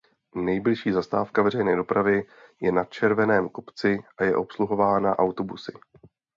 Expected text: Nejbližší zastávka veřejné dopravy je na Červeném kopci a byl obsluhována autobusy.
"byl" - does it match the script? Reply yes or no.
no